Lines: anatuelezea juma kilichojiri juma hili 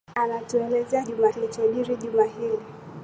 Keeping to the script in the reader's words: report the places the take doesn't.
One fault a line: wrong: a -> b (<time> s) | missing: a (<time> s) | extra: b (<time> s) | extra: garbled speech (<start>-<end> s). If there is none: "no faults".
no faults